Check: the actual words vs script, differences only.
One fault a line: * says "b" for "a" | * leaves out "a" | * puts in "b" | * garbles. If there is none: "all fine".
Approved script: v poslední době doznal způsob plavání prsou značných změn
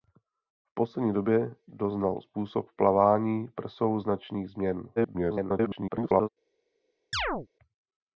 * garbles